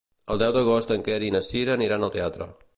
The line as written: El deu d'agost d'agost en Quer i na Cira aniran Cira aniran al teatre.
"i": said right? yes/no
yes